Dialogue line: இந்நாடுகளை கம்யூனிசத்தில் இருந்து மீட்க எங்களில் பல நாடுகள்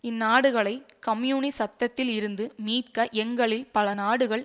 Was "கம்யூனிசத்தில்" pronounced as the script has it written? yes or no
yes